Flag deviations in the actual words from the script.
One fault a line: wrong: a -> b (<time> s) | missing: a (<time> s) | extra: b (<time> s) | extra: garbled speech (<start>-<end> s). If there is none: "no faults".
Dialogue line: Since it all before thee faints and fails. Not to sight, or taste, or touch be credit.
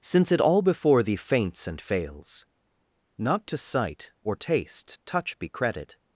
missing: or (5.0 s)